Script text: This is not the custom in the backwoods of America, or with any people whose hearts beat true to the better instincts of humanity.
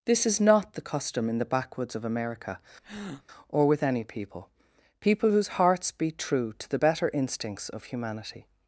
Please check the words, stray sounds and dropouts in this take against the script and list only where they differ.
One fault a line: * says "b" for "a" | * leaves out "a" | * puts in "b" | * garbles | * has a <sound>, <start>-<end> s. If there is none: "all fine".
* has a breath, 2.8-3.2 s
* puts in "people"